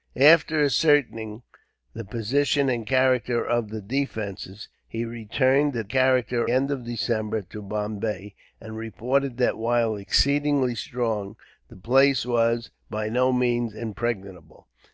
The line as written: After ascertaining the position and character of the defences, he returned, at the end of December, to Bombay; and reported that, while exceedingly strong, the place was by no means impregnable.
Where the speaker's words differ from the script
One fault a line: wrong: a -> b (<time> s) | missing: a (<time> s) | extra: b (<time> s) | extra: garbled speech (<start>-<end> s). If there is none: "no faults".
wrong: the -> character (5.9 s)